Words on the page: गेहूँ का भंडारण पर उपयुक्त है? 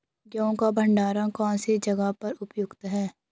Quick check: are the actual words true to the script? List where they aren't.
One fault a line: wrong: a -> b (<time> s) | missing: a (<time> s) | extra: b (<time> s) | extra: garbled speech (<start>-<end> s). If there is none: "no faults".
extra: कौन सी जगह (1.3 s)